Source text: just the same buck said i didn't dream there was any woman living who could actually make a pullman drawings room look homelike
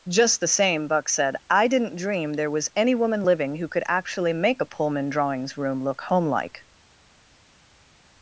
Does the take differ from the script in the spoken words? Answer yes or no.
no